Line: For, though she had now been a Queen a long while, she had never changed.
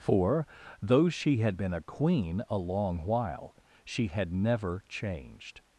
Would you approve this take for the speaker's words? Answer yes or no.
no